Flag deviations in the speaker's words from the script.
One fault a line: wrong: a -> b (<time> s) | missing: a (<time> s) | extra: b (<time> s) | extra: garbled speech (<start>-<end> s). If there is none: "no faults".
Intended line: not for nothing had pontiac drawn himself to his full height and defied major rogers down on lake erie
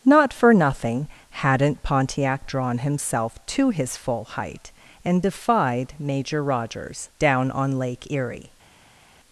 wrong: had -> hadn't (1.3 s)